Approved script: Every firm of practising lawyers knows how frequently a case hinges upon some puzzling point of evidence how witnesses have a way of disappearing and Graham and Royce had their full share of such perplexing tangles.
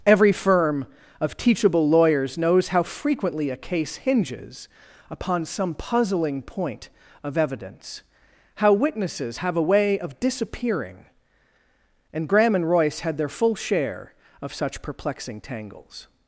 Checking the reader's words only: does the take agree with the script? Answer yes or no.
no